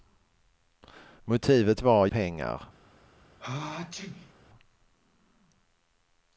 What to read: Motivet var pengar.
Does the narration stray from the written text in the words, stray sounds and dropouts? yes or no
yes